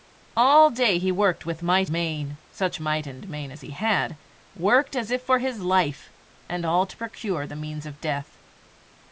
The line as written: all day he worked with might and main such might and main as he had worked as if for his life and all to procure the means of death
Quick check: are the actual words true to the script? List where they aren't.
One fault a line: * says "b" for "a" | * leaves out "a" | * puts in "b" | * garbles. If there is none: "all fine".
* leaves out "and"